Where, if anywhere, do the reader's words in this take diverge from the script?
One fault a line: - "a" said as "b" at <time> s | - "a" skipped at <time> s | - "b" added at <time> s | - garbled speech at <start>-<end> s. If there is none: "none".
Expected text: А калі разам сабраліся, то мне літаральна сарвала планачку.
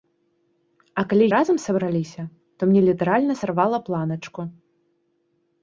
none